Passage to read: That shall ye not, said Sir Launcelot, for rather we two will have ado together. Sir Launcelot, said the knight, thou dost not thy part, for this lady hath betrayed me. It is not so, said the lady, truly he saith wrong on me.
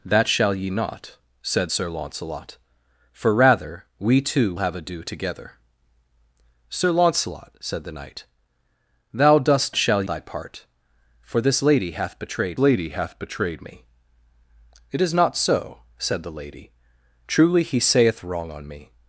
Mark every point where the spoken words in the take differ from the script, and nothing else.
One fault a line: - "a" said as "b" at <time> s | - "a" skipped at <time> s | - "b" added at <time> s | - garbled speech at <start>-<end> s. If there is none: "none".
- "will" skipped at 4.5 s
- "not" said as "shall" at 9.8 s
- "lady hath betrayed" added at 12.6 s